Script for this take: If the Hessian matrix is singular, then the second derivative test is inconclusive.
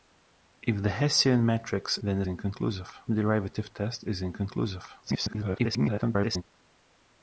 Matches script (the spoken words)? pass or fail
fail